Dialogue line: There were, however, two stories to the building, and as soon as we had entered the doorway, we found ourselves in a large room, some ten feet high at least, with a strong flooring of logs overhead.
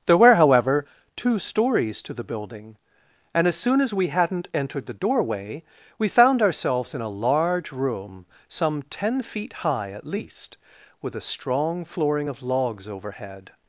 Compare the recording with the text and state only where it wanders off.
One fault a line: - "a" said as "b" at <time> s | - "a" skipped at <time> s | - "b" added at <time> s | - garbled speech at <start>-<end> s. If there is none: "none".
- "had" said as "hadn't" at 4.1 s